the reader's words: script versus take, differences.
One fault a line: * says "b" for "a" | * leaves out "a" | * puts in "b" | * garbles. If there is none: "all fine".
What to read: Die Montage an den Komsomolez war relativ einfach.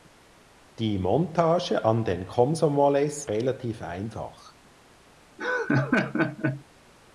* leaves out "war"